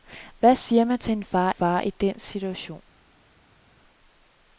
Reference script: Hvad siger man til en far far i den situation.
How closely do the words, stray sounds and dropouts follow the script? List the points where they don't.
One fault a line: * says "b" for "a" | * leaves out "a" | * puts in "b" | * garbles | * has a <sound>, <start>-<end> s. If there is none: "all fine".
all fine